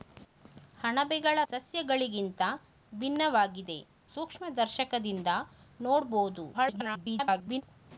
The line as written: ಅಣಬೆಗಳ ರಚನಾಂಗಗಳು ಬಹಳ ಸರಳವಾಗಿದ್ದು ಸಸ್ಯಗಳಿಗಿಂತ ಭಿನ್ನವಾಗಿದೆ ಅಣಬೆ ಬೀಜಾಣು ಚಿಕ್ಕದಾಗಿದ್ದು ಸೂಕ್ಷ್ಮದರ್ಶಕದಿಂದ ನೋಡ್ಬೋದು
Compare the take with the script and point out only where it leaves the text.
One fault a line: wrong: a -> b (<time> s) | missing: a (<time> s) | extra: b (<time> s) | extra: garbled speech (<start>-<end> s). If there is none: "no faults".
missing: ರಚನಾಂಗಗಳು ಬಹಳ ಸರಳವಾಗಿದ್ದು (1.4 s)
missing: ಅಣಬೆ ಬೀಜಾಣು ಚಿಕ್ಕದಾಗಿದ್ದು (3.8 s)
extra: garbled speech (6.5-7.6 s)